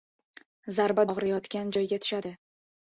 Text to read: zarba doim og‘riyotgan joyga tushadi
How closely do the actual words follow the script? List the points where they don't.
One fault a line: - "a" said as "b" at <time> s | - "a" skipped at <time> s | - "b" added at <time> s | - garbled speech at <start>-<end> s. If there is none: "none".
- "doim" skipped at 1.1 s